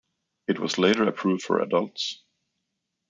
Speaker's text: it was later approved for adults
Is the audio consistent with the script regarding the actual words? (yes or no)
yes